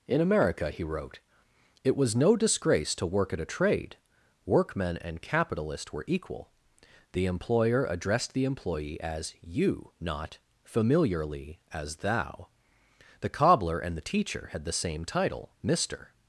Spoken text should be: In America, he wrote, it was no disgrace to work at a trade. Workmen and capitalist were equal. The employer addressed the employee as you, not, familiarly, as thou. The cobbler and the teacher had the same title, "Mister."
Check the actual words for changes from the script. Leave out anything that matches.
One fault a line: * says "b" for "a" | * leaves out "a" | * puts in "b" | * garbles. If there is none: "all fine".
all fine